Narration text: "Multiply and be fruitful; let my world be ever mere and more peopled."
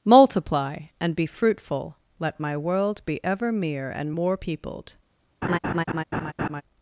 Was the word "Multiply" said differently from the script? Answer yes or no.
no